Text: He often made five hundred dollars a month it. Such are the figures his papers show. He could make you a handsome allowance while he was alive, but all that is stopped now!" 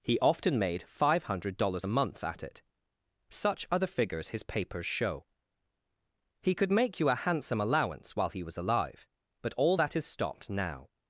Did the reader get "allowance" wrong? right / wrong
right